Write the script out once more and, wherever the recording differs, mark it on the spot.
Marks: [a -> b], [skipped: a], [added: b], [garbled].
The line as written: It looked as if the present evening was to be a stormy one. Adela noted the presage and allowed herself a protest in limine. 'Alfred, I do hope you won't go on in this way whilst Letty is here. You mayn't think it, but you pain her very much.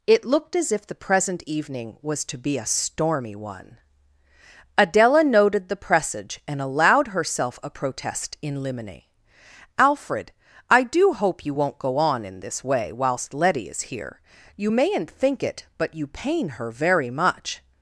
It looked as if the present evening was to be a stormy one. Adela noted the presage and allowed herself a protest in limine. 'Alfred, I do hope you won't go on in this way whilst Letty is here. You mayn't think it, but you pain her very much.